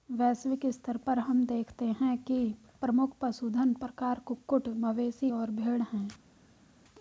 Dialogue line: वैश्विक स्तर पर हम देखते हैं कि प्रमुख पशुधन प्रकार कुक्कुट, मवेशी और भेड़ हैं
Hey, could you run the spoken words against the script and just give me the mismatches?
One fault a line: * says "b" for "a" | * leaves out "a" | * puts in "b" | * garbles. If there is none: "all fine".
all fine